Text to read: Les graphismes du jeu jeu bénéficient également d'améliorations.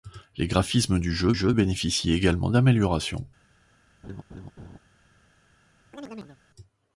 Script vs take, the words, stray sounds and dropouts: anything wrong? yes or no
yes